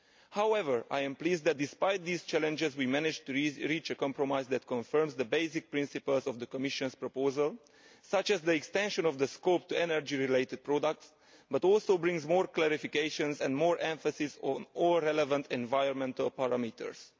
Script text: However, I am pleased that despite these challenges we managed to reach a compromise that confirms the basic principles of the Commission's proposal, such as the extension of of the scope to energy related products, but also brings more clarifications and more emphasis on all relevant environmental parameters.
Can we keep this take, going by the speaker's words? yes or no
no